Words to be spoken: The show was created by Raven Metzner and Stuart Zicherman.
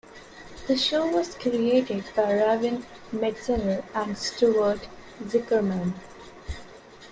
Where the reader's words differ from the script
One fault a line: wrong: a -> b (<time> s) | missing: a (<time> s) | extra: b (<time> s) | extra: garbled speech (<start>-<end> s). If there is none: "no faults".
no faults